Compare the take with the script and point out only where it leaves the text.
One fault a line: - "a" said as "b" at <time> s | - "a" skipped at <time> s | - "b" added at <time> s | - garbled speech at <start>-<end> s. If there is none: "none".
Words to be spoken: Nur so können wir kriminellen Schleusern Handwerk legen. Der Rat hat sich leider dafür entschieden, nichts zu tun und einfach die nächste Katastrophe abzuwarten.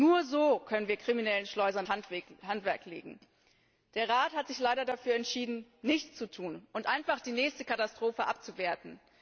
none